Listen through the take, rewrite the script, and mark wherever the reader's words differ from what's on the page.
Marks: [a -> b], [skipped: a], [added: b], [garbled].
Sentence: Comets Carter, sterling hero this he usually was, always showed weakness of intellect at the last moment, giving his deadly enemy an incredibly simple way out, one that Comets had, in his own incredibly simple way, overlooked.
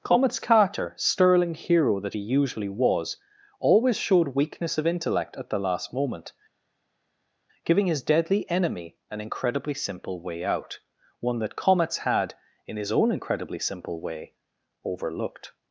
Comets Carter, sterling hero [this -> that] he usually was, always showed weakness of intellect at the last moment, giving his deadly enemy an incredibly simple way out, one that Comets had, in his own incredibly simple way, overlooked.